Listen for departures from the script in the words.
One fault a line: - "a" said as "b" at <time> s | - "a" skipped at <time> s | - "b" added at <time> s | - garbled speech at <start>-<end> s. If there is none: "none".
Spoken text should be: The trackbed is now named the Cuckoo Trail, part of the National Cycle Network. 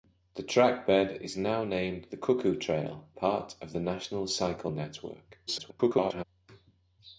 - garbled speech at 5.5-6.2 s